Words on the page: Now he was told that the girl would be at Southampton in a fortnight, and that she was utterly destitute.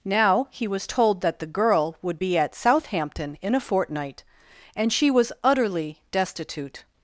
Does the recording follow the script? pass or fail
fail